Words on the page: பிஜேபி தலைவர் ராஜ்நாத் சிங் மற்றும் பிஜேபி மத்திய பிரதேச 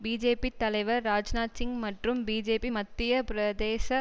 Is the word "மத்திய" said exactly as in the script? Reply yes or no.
yes